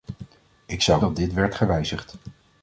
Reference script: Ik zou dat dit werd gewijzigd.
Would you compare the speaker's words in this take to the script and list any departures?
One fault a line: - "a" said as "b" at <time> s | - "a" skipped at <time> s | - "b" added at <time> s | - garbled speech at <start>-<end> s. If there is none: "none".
none